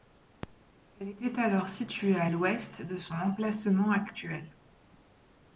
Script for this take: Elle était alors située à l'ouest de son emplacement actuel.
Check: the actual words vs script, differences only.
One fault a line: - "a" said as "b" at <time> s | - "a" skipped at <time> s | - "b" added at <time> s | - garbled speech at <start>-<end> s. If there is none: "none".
none